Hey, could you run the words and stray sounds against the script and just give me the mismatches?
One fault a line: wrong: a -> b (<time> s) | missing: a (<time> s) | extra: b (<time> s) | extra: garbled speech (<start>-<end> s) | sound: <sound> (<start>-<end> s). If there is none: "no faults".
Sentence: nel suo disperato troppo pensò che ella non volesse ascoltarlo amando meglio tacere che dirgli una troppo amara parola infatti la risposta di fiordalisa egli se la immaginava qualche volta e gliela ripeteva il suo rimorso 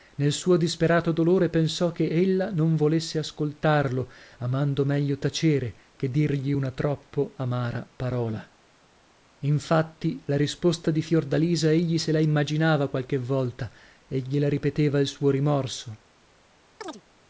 wrong: troppo -> dolore (1.1 s)
sound: chirp (16.8-17.0 s)